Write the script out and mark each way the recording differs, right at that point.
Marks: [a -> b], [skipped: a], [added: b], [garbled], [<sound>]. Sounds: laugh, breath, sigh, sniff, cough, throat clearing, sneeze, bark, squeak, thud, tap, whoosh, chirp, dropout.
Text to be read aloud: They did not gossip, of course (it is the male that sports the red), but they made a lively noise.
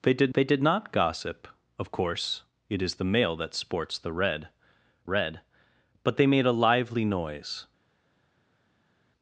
They did [added: they did] not gossip, of course (it is the male that sports the red), [added: red] but they made a lively noise.